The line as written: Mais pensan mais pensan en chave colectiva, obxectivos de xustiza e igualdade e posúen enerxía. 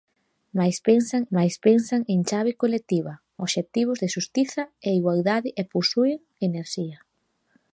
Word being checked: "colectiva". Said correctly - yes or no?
yes